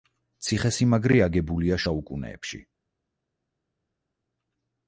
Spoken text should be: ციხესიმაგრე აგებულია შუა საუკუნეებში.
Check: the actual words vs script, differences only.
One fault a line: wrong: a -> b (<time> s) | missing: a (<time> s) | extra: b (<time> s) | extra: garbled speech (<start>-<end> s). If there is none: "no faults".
missing: შუა (1.8 s)